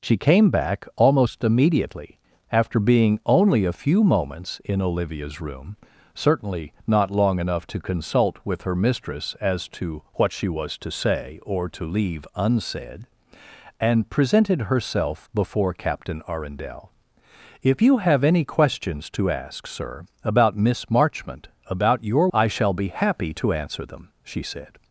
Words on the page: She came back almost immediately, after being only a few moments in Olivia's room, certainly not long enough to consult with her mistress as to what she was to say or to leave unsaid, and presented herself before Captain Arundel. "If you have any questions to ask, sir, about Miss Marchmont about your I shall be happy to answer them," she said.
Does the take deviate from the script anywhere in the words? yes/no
no